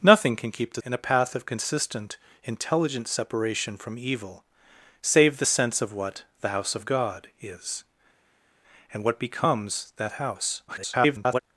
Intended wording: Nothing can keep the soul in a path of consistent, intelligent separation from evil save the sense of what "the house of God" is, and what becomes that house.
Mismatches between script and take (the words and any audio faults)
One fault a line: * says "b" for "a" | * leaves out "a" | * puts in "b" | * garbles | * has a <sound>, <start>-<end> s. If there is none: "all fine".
* leaves out "soul"
* garbles